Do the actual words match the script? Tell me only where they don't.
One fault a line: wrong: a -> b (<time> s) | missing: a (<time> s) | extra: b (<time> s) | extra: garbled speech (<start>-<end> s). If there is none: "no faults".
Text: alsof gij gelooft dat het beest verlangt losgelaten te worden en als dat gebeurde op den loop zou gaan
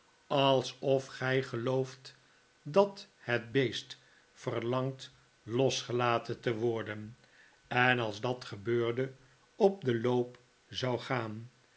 no faults